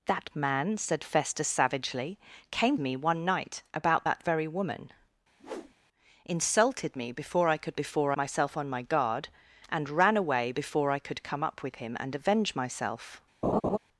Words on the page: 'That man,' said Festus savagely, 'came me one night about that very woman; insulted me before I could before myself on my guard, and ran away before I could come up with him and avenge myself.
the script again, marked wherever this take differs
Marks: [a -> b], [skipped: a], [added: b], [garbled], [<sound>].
'That man,' said Festus savagely, 'came me one night about that very woman; [whoosh] insulted me before I could before myself on my guard, and ran away before I could come up with him and avenge myself. [laugh]